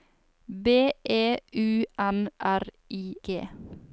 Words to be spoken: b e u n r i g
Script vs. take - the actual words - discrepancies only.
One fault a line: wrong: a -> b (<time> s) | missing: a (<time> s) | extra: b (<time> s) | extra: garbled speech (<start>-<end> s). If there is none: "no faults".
no faults